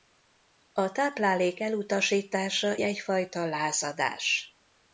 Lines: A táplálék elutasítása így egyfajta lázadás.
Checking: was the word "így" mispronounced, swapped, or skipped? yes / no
yes